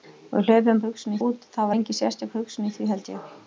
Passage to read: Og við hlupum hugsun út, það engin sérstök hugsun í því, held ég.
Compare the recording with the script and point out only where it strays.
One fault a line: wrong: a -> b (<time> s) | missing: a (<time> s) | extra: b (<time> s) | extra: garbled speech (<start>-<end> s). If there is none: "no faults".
no faults